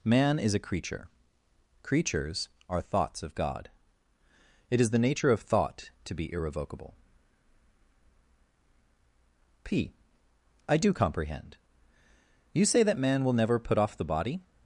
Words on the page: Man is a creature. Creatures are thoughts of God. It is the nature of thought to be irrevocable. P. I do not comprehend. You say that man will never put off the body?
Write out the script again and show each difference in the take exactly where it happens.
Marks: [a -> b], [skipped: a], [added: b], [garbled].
Man is a creature. Creatures are thoughts of God. It is the nature of thought to be irrevocable. P. I do [skipped: not] comprehend. You say that man will never put off the body?